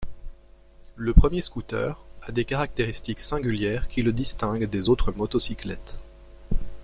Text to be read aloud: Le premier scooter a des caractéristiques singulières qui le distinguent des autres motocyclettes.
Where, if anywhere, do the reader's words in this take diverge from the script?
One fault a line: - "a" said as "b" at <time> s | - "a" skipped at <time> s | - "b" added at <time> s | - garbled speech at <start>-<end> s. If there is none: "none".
none